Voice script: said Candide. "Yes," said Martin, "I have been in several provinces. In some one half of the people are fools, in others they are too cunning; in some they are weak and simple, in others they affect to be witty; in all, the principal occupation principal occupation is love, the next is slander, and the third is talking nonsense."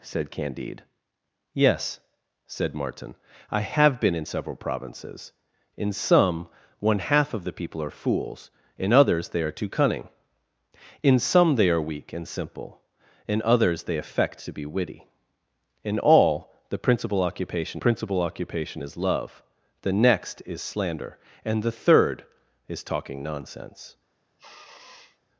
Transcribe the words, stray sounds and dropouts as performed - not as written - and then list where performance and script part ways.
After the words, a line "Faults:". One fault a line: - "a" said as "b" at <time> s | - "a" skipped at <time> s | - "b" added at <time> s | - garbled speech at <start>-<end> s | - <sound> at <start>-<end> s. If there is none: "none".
said Candide. "Yes," said Martin, "I have been in several provinces. In some one half of the people are fools, in others they are too cunning; in some they are weak and simple, in others they affect to be witty; in all, the principal occupation principal occupation is love, the next is slander, and the third is talking nonsense."
Faults:
- sniff at 24.4-25.2 s